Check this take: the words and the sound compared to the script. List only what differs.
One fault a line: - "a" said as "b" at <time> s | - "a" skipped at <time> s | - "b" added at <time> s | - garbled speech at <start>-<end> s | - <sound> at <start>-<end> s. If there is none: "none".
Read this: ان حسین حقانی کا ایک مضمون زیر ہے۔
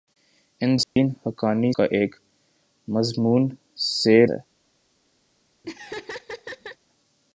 - dropout at 0.8-1.0 s
- laugh at 5.6-6.8 s